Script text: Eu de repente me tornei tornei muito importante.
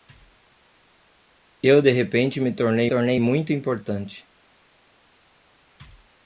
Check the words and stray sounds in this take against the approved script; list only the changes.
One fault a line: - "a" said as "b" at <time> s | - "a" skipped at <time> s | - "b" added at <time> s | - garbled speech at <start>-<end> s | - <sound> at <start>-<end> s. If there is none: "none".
none